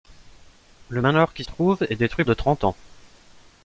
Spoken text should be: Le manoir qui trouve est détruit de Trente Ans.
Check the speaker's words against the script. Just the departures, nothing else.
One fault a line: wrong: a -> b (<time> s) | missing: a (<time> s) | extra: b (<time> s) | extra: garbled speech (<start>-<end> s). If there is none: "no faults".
no faults